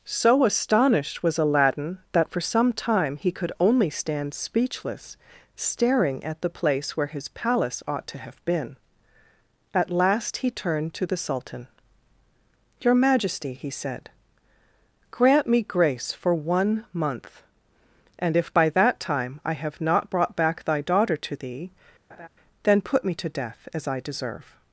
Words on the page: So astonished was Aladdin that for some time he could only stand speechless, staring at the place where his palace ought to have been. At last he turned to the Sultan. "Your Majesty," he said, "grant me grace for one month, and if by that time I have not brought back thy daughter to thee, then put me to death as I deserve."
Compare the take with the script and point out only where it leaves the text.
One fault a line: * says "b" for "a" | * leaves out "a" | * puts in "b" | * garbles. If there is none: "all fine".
all fine